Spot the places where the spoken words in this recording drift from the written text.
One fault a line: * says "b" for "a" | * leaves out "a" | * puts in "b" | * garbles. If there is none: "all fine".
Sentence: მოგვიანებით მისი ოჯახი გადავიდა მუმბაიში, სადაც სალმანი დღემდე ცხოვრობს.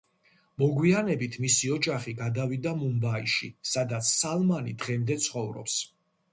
all fine